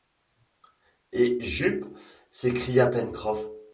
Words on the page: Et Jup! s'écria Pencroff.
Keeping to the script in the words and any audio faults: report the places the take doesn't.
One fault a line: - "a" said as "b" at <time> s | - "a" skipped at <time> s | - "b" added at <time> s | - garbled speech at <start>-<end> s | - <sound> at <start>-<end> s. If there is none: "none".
none